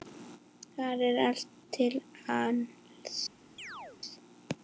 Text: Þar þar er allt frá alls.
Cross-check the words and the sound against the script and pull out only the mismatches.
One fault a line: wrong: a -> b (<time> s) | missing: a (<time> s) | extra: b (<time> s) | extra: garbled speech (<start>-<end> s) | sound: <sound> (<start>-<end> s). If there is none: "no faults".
missing: þar (1.0 s)
wrong: frá -> til (1.8 s)
sound: chirp (3.6-4.0 s)